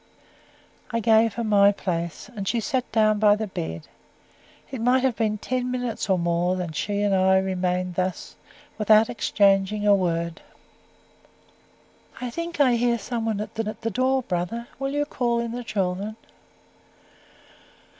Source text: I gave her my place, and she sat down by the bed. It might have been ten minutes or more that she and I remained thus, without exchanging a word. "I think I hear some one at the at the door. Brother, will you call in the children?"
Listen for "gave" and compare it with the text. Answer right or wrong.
right